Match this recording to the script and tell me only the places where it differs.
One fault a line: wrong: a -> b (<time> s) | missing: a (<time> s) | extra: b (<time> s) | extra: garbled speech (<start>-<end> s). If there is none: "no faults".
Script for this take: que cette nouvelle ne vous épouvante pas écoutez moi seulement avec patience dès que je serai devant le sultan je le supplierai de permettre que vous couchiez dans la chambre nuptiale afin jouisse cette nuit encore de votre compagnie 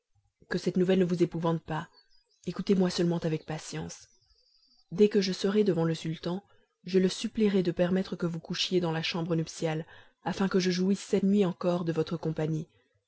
extra: que je (10.5 s)